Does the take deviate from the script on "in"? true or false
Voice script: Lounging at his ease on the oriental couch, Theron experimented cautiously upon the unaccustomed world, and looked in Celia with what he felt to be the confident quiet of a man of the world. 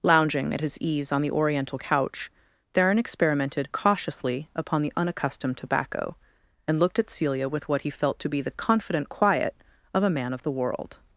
true